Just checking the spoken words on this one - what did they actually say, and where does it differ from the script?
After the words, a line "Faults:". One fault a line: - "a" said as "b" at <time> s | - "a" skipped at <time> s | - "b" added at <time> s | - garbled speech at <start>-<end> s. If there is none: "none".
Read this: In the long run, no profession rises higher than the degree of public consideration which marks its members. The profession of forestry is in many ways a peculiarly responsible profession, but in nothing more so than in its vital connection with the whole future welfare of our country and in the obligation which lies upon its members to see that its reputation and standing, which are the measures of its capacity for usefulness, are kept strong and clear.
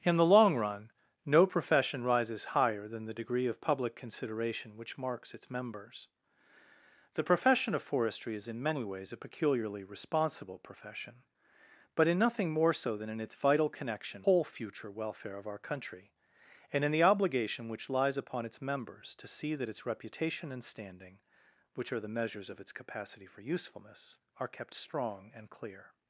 In the long run, no profession rises higher than the degree of public consideration which marks its members. The profession of forestry is in many ways a peculiarly responsible profession, but in nothing more so than in its vital connection whole future welfare of our country and in the obligation which lies upon its members to see that its reputation and standing, which are the measures of its capacity for usefulness, are kept strong and clear.
Faults:
- "with the" skipped at 14.3 s